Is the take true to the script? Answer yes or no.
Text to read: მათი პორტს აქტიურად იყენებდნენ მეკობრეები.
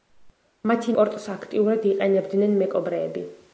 yes